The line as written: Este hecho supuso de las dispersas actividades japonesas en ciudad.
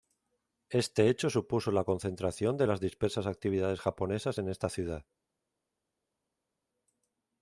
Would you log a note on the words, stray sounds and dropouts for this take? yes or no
yes